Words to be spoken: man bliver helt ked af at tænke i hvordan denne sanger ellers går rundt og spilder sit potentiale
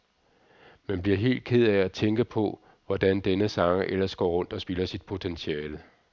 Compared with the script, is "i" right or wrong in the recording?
wrong